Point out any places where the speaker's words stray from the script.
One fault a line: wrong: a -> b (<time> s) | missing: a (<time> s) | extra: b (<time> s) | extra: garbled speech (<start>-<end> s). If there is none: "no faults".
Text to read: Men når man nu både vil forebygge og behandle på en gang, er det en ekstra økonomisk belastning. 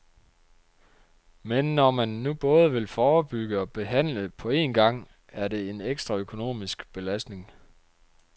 no faults